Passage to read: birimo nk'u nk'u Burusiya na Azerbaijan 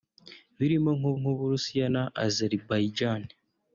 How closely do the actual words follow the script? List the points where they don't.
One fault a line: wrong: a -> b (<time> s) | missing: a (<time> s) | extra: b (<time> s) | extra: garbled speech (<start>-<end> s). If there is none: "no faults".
no faults